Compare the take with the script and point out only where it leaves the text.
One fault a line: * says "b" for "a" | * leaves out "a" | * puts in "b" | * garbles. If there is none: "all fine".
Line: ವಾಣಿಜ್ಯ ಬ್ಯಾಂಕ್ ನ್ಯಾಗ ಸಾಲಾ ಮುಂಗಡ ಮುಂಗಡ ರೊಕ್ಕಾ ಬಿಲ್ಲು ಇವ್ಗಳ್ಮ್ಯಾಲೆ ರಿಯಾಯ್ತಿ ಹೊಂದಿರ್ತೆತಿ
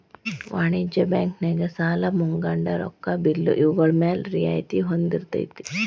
* leaves out "ಮುಂಗಡ"